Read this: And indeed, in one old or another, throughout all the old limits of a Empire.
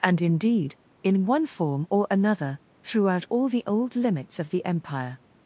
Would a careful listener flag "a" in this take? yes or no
yes